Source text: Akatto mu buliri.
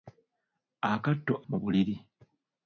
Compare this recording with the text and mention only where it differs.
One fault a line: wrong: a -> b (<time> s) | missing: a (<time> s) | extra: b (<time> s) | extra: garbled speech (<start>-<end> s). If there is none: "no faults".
no faults